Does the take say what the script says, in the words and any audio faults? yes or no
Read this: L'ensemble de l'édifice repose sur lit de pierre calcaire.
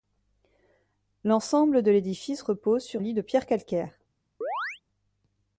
no